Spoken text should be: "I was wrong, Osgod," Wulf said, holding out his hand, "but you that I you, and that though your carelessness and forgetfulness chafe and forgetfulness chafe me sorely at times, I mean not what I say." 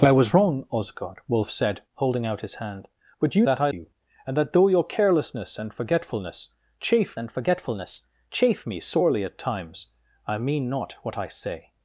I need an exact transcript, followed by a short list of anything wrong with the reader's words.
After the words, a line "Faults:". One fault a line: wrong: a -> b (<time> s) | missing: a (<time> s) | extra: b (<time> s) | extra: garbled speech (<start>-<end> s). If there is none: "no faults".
"I was wrong, Osgod," Wulf said, holding out his hand, "but you that I you, and that though your carelessness and forgetfulness chafe and forgetfulness chafe me sorely at times, I mean not what I say."
Faults:
no faults